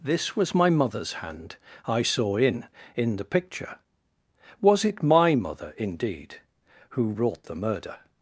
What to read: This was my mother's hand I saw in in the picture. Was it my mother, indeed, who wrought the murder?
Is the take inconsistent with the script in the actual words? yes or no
no